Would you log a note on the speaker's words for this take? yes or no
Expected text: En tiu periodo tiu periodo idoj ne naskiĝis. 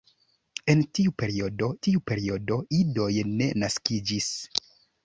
no